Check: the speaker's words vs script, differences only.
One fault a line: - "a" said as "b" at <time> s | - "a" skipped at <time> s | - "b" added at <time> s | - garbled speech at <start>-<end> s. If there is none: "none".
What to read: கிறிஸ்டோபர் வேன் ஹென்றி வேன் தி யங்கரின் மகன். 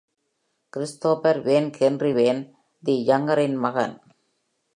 none